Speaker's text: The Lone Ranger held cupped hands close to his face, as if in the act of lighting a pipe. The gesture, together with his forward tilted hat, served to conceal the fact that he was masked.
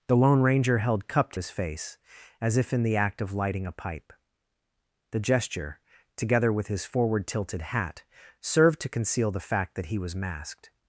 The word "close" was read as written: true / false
false